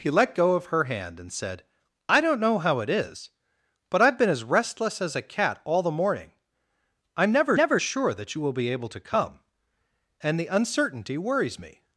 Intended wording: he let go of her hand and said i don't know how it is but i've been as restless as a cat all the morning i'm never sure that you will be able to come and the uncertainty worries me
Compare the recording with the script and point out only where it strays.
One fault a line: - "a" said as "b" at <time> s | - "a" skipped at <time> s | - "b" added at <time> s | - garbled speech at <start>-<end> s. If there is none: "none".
- "never" added at 7.5 s